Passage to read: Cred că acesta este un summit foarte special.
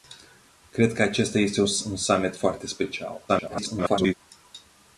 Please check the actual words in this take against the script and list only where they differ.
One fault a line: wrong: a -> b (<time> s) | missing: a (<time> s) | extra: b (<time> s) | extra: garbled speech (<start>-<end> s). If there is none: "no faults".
extra: garbled speech (3.3-4.1 s)